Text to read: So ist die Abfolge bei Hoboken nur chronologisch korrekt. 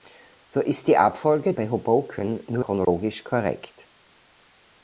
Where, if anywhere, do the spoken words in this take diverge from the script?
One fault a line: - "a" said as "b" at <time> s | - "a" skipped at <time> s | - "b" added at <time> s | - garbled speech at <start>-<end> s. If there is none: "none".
none